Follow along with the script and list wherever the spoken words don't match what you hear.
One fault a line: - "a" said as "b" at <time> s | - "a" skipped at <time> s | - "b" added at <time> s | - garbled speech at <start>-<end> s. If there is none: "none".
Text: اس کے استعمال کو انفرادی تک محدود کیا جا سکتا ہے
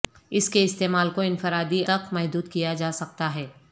none